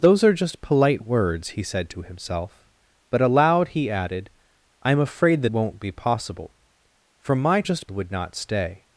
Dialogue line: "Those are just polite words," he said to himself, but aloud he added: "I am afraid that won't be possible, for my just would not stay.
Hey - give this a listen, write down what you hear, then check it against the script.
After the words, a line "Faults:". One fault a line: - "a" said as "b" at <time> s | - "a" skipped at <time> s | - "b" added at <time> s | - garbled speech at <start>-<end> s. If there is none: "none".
"Those are just polite words," he said to himself, but aloud he added: "I am afraid that won't be possible, for my just would not stay.
Faults:
none